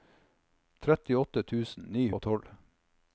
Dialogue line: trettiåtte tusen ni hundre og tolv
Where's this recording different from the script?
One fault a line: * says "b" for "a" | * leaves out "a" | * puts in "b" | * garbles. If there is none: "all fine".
* leaves out "hundre"